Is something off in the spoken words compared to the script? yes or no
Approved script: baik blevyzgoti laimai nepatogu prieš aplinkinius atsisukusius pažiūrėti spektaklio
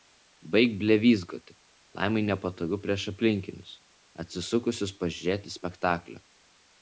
no